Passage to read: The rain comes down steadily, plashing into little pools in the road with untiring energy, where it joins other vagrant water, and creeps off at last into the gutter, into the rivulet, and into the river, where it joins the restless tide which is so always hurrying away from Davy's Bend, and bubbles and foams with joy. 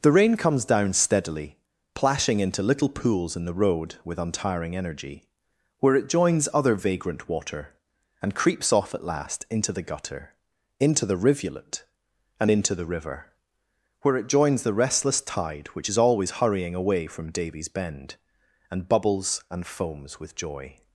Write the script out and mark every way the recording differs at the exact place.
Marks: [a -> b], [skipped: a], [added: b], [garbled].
The rain comes down steadily, plashing into little pools in the road with untiring energy, where it joins other vagrant water, and creeps off at last into the gutter, into the rivulet, and into the river, where it joins the restless tide which is [skipped: so] always hurrying away from Davy's Bend, and bubbles and foams with joy.